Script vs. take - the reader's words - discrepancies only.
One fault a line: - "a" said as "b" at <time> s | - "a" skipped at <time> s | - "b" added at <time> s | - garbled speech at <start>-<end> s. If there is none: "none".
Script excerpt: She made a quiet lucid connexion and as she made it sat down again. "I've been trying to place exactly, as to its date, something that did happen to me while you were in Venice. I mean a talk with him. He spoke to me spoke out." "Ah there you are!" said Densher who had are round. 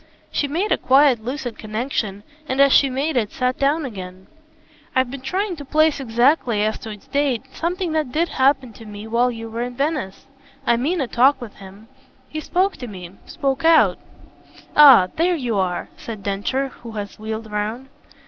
- "are" said as "wheeled" at 17.2 s